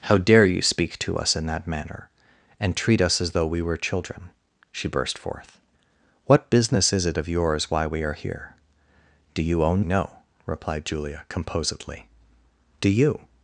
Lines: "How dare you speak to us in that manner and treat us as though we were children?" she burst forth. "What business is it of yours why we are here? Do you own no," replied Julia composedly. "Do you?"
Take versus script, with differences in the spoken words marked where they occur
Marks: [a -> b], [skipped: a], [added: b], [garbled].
"How dare you speak to us in that manner and treat us as though we were children?" she burst forth. "What business is it of yours why we are here? Do you own no," replied Julia composedly. "Do you?"